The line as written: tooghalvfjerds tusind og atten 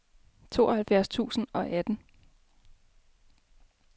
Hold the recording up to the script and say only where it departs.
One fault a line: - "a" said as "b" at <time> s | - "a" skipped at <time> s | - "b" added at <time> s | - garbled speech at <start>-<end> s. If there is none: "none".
none